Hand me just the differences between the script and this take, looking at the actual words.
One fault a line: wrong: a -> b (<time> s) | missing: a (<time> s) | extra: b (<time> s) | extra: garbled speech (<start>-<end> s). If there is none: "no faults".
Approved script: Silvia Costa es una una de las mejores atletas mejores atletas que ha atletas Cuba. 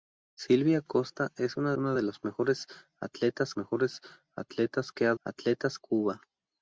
no faults